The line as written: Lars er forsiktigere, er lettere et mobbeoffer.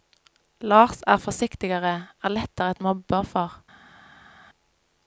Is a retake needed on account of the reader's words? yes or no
no